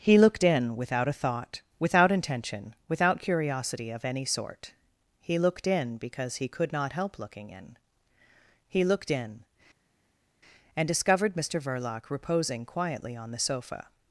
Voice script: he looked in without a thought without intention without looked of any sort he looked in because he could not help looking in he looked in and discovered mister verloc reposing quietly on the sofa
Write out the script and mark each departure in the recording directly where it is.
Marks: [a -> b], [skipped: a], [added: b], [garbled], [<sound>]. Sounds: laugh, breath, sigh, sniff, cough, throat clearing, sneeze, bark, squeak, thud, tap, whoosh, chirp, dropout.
he looked in without a thought without intention without [looked -> curiosity] of any sort he looked in because he could not help looking in he looked in and discovered mister verloc reposing quietly on the sofa